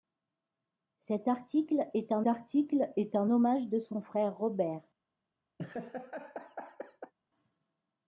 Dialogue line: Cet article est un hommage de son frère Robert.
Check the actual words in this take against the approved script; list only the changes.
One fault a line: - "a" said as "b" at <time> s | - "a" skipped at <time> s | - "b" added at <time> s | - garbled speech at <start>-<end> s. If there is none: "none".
- "article est un" added at 2.3 s